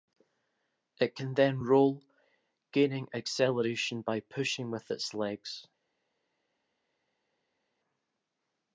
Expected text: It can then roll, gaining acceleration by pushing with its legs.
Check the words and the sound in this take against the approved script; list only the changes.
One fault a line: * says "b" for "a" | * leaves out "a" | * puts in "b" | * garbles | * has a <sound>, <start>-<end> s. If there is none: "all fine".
all fine